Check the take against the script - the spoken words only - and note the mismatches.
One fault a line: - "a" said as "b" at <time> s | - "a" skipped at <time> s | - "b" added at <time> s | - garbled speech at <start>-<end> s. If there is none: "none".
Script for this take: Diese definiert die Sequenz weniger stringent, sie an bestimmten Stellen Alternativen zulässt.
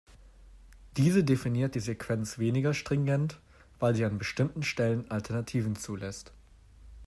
- "weil" added at 3.8 s